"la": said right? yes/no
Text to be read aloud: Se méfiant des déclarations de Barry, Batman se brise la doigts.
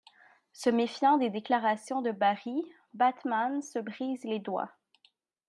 no